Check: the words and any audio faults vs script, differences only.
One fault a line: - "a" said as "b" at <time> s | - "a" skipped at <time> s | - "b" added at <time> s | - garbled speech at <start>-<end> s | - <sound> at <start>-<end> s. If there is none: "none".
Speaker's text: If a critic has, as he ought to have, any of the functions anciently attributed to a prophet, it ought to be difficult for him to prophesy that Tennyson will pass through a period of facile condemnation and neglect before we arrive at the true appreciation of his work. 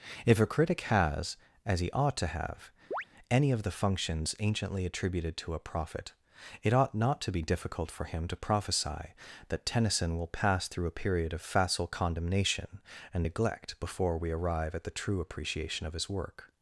- chirp at 2.9-3.0 s
- "not" added at 6.9 s